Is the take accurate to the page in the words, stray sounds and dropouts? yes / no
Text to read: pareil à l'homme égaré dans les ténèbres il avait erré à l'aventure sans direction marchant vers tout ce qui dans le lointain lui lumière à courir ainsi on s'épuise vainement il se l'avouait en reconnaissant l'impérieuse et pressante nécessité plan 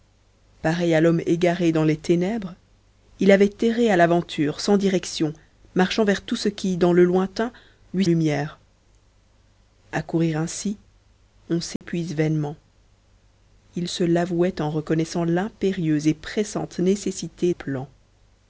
no